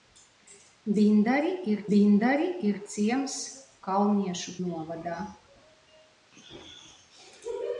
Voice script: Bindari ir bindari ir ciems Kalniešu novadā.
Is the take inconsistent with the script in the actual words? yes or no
no